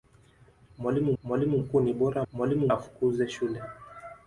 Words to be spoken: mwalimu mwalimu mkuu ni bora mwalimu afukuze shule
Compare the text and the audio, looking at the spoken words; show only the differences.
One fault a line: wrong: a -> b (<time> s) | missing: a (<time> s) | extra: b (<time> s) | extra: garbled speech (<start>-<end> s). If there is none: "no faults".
no faults